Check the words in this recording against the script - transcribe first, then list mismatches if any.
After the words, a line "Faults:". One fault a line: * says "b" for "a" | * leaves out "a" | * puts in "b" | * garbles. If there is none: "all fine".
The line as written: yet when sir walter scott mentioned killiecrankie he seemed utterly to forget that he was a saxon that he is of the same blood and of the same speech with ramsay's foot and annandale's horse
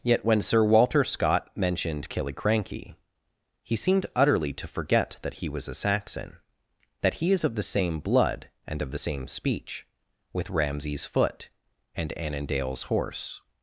yet when sir walter scott mentioned killiecrankie he seemed utterly to forget that he was a saxon that he is of the same blood and of the same speech with ramsay's foot and annandale's horse
Faults:
all fine